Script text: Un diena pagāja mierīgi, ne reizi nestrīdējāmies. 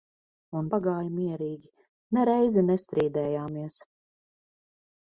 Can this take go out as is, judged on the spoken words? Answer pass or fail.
fail